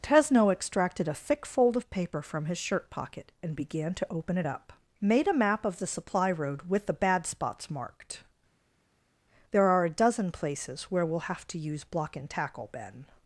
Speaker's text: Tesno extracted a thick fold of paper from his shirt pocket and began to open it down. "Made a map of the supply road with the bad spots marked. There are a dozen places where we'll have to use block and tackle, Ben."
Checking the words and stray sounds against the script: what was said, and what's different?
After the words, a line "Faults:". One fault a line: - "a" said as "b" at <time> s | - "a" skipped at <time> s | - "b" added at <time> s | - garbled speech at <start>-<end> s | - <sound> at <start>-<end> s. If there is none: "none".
Tesno extracted a thick fold of paper from his shirt pocket and began to open it up. "Made a map of the supply road with the bad spots marked. There are a dozen places where we'll have to use block and tackle, Ben."
Faults:
- "down" said as "up" at 4.5 s